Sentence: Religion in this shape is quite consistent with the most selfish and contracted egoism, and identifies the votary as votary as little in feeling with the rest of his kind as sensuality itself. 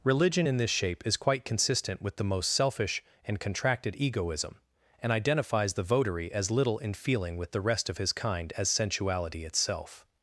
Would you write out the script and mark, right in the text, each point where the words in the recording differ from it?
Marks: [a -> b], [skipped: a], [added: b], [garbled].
Religion in this shape is quite consistent with the most selfish and contracted egoism, and identifies the votary as [skipped: votary as] little in feeling with the rest of his kind as sensuality itself.